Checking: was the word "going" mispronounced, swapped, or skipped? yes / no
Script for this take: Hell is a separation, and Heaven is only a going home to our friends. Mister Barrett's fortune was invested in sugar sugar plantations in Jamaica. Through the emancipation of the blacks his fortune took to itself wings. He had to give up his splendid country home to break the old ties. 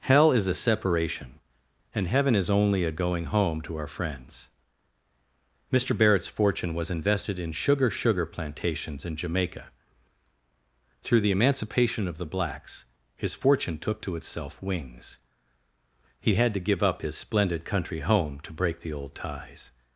no